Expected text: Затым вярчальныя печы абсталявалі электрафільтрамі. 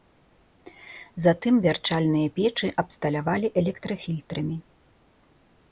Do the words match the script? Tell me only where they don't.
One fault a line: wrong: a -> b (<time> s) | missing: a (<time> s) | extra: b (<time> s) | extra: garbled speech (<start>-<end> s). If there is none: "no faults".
no faults